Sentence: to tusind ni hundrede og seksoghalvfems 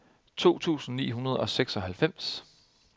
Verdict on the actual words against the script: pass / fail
pass